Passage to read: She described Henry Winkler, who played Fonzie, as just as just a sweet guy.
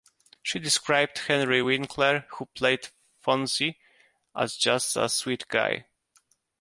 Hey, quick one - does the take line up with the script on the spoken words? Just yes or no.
no